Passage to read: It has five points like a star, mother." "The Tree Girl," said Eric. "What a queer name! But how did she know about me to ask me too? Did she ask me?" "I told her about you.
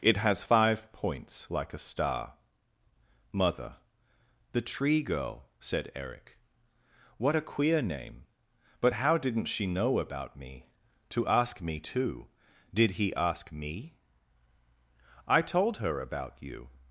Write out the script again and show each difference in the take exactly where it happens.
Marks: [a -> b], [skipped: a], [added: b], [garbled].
It has five points like a star, mother." "The Tree Girl," said Eric. "What a queer name! But how [did -> didn't] she know about me to ask me too? Did [she -> he] ask me?" "I told her about you.